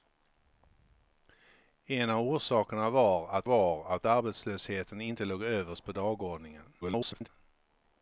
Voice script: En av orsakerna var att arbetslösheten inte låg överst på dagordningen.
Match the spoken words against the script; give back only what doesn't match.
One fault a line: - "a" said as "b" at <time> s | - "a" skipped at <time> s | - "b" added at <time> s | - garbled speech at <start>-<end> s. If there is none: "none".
- "var att" added at 3.4 s
- garbled speech at 6.8-7.3 s